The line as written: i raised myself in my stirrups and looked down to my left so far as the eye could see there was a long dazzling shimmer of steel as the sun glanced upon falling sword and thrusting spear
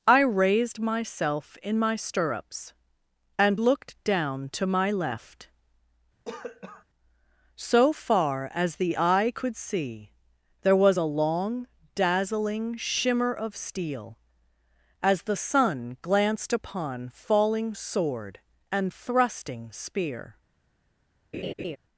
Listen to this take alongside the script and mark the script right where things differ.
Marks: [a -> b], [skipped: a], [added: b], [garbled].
i raised myself in my stirrups and looked down to my left so far as the eye could see there was a long dazzling shimmer of steel as the sun glanced upon falling sword and thrusting spear